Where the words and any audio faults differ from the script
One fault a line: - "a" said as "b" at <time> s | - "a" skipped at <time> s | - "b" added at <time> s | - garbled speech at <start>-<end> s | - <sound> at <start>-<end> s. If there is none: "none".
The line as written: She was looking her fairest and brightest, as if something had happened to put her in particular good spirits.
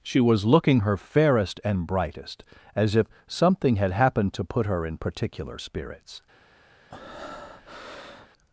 - "good" skipped at 5.6 s
- breath at 6.9-8.3 s